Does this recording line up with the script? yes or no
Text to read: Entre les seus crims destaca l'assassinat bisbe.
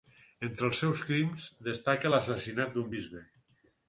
no